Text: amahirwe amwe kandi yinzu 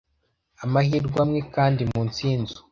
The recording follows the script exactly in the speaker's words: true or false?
false